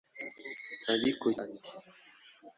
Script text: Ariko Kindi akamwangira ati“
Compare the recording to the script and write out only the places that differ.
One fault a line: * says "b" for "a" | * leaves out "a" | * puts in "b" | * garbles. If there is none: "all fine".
* leaves out "Kindi akamwangira"